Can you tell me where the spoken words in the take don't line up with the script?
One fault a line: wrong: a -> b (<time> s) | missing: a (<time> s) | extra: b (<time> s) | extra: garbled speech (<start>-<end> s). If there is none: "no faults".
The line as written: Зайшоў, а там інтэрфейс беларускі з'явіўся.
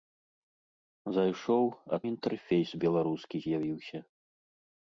missing: там (2.0 s)